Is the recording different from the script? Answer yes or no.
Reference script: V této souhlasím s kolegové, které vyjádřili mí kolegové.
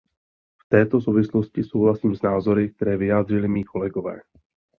yes